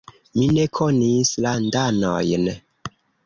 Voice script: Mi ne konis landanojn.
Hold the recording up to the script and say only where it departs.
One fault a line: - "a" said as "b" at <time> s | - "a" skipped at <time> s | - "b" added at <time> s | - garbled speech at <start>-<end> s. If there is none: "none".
none